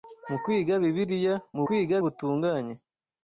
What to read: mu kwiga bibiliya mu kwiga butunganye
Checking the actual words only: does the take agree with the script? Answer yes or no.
yes